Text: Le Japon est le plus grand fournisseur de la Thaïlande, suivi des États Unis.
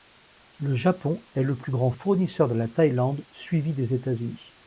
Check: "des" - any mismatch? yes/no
no